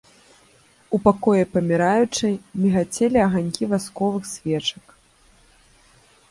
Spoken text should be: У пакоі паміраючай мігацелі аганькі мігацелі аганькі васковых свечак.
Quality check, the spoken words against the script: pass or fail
fail